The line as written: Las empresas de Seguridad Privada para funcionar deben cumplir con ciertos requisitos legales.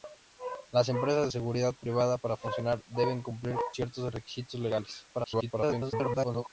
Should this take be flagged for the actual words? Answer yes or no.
yes